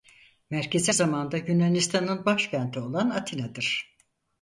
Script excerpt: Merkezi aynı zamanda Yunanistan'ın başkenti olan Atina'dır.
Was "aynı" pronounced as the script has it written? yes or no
no